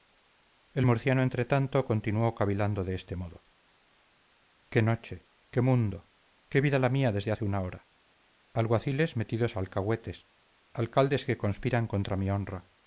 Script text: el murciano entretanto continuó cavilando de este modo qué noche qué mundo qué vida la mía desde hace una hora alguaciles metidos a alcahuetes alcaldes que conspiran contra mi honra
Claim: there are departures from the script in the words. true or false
false